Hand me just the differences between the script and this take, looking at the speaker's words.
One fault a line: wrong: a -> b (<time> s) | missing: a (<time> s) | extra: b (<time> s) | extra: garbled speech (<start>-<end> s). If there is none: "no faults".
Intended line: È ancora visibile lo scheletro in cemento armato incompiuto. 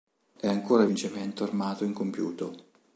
missing: visibile lo scheletro (0.9 s)